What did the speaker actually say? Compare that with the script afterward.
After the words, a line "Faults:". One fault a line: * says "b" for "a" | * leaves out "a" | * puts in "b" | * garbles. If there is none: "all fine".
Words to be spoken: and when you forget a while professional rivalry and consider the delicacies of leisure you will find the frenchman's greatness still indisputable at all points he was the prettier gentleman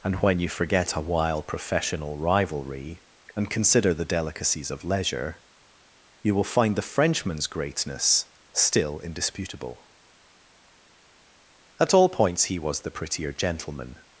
and when you forget a while professional rivalry and consider the delicacies of leisure you will find the frenchman's greatness still indisputable at all points he was the prettier gentleman
Faults:
all fine